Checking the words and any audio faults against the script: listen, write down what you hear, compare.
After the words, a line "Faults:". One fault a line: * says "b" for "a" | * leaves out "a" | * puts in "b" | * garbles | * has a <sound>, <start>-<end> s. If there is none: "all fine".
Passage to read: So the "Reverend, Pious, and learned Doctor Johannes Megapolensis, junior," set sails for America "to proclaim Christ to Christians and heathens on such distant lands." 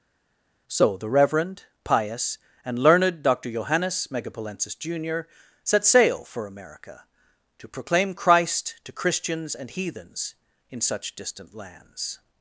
So the "Reverend, Pious, and learned Doctor Johannes Megapolensis, junior," set sail for America "to proclaim Christ to Christians and heathens in such distant lands."
Faults:
* says "sail" for "sails"
* says "in" for "on"